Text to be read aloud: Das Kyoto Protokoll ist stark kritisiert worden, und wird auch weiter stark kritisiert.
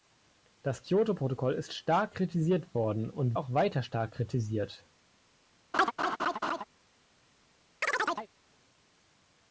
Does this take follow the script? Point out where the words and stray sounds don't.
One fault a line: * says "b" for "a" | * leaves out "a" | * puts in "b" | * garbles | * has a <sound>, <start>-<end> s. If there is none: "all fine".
* leaves out "wird"
* has a laugh, 5.7-6.6 s
* has a chirp, 7.8-8.3 s